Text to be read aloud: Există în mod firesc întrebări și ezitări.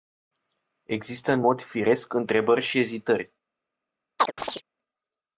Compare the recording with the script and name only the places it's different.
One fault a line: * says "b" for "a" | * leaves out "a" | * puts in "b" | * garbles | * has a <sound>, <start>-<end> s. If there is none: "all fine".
* has a chirp, 4.2-4.6 s